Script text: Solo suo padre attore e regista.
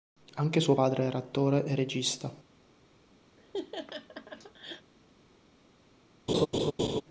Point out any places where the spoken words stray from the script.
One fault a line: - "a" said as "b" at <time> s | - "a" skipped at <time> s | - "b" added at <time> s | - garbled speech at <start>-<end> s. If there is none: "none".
- "Solo" said as "Anche" at 0.4 s
- "era" added at 1.0 s